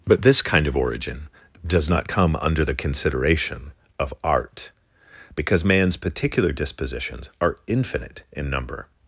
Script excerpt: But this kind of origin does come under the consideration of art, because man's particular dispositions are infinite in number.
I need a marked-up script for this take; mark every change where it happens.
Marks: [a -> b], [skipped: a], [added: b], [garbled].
But this kind of origin does [added: not] come under the consideration of art, because man's particular dispositions are infinite in number.